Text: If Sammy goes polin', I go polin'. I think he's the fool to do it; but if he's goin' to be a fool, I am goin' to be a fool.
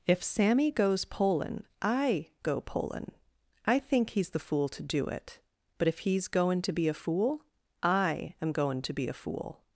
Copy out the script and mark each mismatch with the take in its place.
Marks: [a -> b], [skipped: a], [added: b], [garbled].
If Sammy goes polin', I go polin'. I think he's the fool to do it; but if he's goin' to be a fool, I am goin' to be a fool.